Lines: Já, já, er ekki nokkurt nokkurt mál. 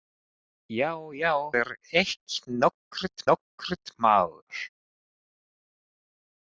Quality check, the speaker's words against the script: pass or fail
pass